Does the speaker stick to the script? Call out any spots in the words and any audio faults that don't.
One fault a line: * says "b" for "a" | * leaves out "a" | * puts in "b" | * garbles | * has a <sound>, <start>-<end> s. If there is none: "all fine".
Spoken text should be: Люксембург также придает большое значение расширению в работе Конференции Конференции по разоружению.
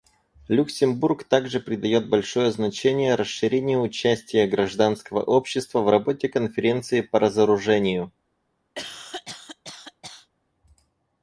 * puts in "участия гражданского общества"
* leaves out "Конференции"
* has a cough, 8.8-10.3 s